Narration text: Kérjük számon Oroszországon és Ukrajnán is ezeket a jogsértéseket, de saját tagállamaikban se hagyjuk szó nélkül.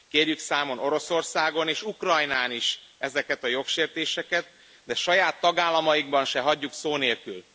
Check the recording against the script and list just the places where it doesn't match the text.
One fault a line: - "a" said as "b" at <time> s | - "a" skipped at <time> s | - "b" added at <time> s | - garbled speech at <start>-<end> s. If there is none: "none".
none